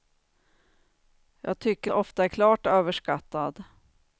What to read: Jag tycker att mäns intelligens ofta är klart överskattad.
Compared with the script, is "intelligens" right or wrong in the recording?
wrong